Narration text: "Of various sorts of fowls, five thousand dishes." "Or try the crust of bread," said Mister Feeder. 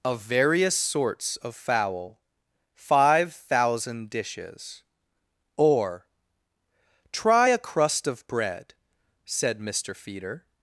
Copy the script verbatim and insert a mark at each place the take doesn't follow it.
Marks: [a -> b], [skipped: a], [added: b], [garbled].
"Of various sorts of [fowls, -> fowl] five thousand dishes." "Or try [the -> a] crust of bread," said Mister Feeder.